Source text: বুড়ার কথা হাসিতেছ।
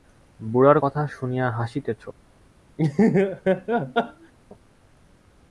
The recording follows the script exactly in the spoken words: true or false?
false